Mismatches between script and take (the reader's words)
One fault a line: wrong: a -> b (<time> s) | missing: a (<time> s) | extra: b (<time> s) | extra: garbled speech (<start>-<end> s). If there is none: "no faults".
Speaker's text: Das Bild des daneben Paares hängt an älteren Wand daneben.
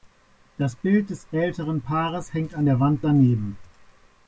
wrong: daneben -> älteren (1.3 s)
wrong: älteren -> der (2.6 s)